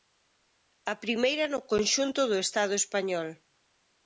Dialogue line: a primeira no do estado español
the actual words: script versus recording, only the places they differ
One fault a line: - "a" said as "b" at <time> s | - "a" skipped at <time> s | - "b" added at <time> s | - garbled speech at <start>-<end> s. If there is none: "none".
- "conxunto" added at 1.7 s